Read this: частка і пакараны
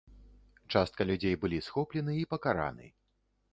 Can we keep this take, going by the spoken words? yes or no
no